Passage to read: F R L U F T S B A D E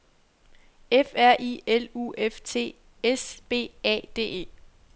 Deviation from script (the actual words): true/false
true